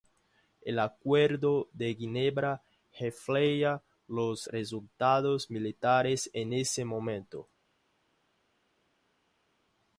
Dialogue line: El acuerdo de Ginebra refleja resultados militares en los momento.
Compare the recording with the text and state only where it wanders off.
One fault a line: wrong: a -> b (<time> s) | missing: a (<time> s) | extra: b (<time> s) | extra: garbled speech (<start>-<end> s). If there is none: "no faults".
extra: los (4.1 s)
wrong: los -> ese (6.5 s)